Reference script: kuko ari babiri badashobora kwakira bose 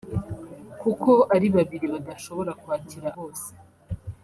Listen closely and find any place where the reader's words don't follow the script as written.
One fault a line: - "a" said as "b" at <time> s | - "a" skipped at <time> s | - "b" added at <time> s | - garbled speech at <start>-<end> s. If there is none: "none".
none